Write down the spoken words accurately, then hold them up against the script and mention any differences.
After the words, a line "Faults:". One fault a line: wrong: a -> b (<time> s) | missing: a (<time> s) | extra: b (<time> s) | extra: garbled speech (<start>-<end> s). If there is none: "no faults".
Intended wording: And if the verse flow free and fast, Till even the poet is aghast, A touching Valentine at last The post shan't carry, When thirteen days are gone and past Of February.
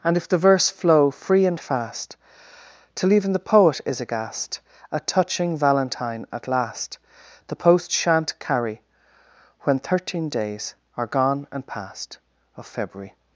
And if the verse flow free and fast, Till even the poet is aghast, A touching Valentine at last The post shan't carry, When thirteen days are gone and past Of February.
Faults:
no faults